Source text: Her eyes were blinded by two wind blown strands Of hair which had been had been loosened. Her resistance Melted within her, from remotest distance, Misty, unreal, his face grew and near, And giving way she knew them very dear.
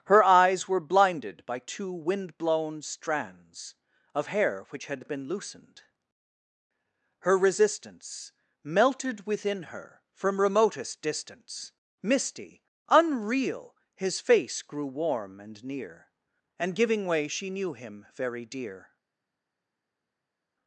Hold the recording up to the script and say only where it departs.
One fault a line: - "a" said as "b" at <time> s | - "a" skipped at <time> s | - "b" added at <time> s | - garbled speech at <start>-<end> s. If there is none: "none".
- "had been" skipped at 5.3 s
- "warm" added at 14.9 s
- "them" said as "him" at 17.7 s